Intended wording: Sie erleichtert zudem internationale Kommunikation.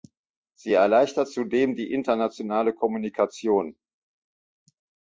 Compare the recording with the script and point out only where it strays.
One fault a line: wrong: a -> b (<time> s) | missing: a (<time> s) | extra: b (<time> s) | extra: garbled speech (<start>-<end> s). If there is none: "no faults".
extra: die (1.7 s)